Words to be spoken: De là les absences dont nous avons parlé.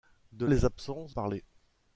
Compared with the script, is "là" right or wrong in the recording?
wrong